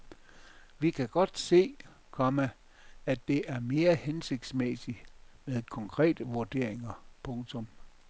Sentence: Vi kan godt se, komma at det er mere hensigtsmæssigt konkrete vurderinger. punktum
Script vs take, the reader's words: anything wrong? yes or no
yes